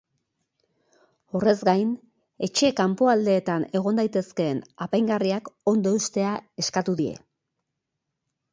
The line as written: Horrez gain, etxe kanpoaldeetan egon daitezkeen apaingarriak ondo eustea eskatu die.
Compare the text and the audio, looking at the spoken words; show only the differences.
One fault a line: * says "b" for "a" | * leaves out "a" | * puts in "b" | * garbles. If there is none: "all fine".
all fine